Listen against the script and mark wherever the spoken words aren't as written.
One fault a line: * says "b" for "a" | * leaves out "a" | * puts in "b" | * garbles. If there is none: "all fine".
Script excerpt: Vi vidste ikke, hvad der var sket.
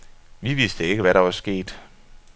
all fine